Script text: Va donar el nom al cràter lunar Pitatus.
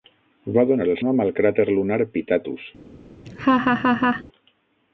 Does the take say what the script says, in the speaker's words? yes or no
yes